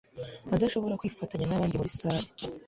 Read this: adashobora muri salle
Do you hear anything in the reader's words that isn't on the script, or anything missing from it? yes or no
yes